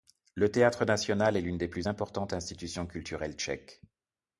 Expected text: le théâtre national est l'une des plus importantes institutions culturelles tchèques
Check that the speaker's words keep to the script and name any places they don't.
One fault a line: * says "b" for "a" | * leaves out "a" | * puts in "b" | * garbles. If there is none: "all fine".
all fine